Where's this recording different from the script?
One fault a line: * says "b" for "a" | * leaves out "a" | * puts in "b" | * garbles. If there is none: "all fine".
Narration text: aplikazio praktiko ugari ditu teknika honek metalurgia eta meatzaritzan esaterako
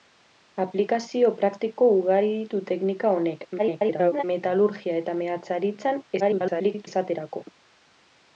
* garbles
* garbles